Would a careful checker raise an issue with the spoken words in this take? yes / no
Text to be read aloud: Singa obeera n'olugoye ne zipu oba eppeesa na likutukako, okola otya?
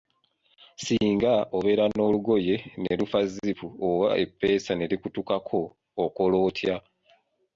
yes